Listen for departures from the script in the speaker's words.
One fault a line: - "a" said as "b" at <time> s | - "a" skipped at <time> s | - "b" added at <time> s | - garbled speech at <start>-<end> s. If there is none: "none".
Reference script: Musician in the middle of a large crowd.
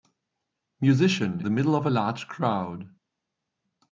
- "in" skipped at 1.4 s